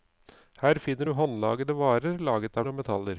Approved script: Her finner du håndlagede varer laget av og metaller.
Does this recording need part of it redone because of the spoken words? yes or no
no